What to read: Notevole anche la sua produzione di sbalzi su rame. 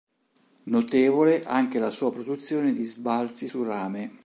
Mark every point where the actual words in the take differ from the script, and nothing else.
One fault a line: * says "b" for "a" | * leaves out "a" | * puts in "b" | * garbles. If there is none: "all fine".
all fine